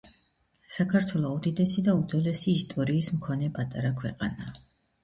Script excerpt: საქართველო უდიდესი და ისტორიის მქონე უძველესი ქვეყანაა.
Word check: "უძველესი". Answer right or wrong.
wrong